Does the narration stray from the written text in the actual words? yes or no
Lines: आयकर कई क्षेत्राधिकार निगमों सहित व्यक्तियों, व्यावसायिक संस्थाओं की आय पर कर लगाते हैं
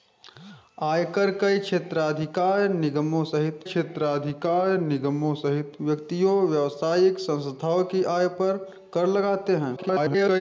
yes